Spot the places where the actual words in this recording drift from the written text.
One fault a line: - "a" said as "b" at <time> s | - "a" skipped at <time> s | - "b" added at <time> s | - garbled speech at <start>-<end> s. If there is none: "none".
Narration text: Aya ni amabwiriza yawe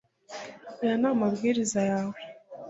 none